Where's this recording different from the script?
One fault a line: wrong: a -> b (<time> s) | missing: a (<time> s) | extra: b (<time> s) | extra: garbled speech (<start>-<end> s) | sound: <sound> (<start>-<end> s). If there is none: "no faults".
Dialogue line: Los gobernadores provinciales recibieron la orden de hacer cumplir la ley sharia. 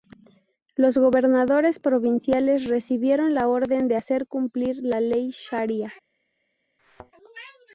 sound: thud (6.8-7.1 s)